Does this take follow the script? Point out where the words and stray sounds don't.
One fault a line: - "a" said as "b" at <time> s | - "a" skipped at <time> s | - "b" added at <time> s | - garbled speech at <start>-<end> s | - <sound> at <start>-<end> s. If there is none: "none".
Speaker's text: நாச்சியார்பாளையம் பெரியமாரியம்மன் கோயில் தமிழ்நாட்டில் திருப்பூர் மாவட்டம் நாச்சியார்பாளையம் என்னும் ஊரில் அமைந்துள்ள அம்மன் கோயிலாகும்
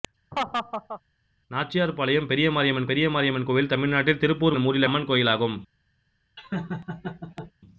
- laugh at 0.3-1.0 s
- "பெரியமாரியம்மன்" added at 2.9 s
- "மாவட்டம் நாச்சியார்பாளையம்" skipped at 4.6 s
- "அமைந்துள்ள" skipped at 4.9 s
- laugh at 6.4-7.5 s